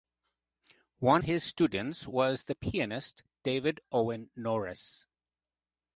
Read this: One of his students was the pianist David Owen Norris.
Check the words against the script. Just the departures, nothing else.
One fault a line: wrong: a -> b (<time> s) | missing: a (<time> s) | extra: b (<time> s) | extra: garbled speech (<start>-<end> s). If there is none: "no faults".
missing: of (1.2 s)